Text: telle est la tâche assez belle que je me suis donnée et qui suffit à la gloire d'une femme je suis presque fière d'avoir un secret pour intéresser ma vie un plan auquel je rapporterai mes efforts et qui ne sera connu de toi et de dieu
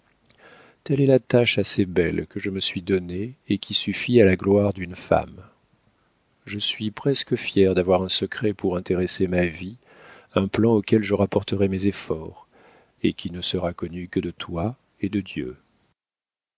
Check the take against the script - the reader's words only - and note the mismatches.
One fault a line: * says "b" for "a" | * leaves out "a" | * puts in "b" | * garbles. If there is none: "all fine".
* puts in "que"